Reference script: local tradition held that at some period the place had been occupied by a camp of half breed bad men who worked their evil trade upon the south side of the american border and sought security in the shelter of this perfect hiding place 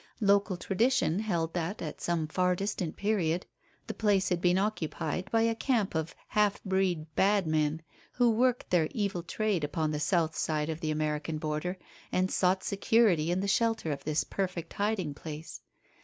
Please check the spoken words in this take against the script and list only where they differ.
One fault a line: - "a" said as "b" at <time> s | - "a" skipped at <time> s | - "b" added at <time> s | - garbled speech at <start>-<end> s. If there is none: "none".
- "far distant" added at 2.3 s